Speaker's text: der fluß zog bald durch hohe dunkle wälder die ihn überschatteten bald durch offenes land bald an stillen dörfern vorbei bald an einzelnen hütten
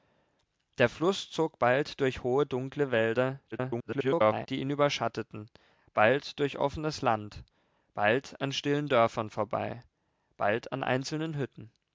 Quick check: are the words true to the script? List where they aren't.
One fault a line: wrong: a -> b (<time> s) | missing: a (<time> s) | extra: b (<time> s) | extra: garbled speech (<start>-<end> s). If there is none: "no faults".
extra: garbled speech (3.5-4.5 s)